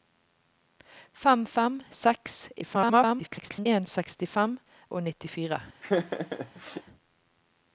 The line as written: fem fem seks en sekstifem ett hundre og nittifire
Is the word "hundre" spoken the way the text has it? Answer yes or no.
no